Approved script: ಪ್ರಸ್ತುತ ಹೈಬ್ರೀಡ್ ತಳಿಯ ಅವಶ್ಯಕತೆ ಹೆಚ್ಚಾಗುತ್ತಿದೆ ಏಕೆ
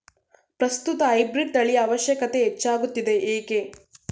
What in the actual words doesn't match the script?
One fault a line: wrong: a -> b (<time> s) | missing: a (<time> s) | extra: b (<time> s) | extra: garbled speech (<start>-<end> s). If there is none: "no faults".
no faults